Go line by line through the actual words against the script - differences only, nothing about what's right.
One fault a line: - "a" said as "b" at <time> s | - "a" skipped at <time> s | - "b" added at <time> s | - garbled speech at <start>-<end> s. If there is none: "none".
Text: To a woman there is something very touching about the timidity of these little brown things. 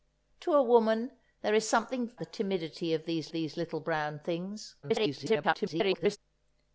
- "very touching about" skipped at 2.1 s
- "these" added at 3.3 s
- garbled speech at 4.8-6.2 s